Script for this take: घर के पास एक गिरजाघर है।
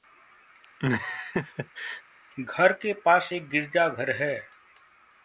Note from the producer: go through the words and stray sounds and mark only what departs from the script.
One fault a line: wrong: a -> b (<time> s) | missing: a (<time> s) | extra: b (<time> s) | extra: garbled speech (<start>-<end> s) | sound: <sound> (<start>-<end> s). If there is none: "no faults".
sound: laugh (0.8-2.0 s)